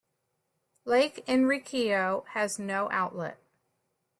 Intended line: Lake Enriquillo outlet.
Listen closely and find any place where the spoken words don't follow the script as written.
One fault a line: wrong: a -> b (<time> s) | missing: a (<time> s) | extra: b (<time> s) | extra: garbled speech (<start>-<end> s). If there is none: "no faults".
extra: has no (2.3 s)